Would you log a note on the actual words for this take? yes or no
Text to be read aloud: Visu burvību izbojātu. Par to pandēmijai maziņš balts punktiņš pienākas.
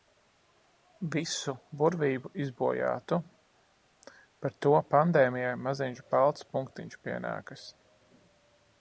no